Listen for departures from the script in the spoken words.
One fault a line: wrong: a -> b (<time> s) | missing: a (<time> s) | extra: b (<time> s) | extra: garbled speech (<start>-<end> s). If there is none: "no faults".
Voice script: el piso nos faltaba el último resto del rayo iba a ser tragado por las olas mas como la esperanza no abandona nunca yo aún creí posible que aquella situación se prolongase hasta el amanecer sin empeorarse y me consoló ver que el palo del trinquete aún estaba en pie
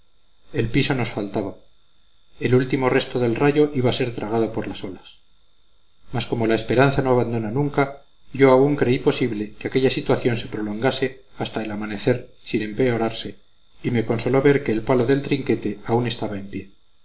no faults